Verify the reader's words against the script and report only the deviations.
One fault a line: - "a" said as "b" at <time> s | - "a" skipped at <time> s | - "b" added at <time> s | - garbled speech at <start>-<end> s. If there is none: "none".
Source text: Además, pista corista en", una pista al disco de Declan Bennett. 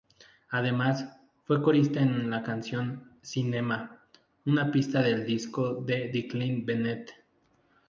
- "pista" said as "fue" at 1.4 s
- "la canción Cinema" added at 2.3 s
- "al" said as "del" at 5.0 s